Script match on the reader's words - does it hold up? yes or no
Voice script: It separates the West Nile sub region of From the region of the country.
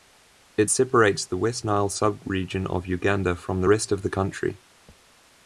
no